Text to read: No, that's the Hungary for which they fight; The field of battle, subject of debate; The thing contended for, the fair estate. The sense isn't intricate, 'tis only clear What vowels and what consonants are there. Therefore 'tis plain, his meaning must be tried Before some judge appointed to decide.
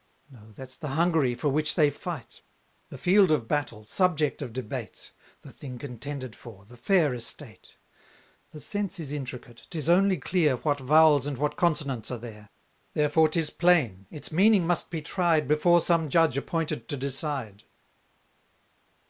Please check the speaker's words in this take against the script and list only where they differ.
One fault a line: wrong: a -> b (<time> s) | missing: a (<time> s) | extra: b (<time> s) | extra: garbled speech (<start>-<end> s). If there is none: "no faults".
wrong: isn't -> is (9.0 s)
wrong: his -> its (14.1 s)